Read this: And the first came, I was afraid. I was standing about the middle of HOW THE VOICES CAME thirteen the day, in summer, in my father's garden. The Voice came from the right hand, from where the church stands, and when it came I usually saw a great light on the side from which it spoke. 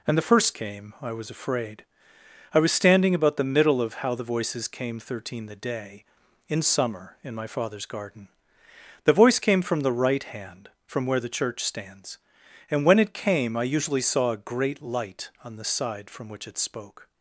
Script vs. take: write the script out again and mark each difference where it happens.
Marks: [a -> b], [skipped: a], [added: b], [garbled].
And the first came, I was afraid. I was standing about the middle of HOW THE VOICES CAME thirteen the day, in summer, in my father's garden. The Voice came from the right hand, from where the church stands, and when it came I usually saw a great light on the side from which it spoke.